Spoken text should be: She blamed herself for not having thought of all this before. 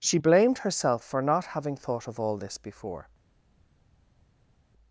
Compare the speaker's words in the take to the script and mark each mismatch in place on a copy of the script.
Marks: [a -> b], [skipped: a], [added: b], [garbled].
She blamed herself for not having thought of all this before.